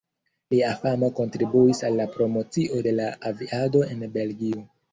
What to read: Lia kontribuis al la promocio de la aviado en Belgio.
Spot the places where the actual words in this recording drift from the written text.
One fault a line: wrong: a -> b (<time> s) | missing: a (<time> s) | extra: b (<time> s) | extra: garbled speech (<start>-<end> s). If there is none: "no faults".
extra: famo (0.8 s)